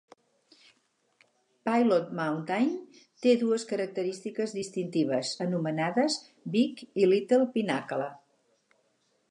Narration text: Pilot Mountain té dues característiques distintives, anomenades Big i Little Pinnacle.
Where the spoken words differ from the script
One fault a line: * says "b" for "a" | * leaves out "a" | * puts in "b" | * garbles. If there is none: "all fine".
all fine